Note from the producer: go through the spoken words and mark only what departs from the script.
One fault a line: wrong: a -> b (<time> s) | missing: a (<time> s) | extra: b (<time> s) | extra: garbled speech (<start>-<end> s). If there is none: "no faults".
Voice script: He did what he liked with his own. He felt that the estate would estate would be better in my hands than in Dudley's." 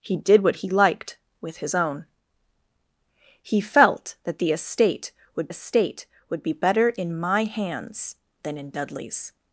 no faults